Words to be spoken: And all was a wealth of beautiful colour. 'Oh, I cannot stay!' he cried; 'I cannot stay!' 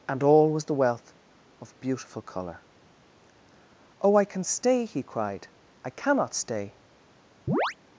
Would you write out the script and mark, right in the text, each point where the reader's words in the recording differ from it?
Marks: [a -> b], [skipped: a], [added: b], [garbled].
And all was [a -> the] wealth of beautiful colour. 'Oh, I [cannot -> can] stay!' he cried; 'I cannot stay!'